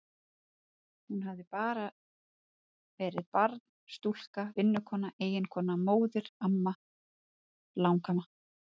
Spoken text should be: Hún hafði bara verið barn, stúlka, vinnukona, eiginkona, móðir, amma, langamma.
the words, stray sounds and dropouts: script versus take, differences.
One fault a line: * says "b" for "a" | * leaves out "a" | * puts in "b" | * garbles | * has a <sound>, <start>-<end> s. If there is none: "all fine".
all fine